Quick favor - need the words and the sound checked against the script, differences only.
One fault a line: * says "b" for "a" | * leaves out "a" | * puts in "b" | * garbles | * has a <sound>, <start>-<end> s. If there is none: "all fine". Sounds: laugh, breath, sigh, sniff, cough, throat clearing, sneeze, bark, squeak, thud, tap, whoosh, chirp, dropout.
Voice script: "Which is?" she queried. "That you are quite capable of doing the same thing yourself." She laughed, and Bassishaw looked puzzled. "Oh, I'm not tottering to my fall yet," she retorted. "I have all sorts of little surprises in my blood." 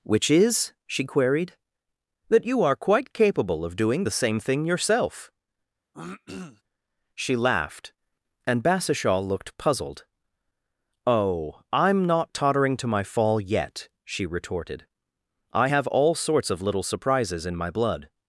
* has a throat clearing, 5.9-6.6 s